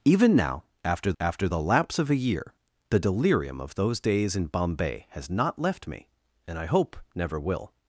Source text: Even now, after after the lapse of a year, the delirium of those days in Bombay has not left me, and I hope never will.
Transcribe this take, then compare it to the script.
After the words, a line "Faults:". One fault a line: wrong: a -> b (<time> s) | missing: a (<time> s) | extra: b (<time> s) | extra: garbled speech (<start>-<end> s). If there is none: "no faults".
Even now, after after the lapse of a year, the delirium of those days in Bombay has not left me, and I hope never will.
Faults:
no faults